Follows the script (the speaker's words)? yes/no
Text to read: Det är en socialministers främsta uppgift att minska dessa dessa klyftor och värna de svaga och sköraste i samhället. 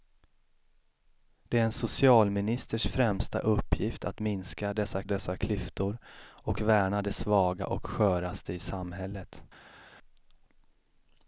yes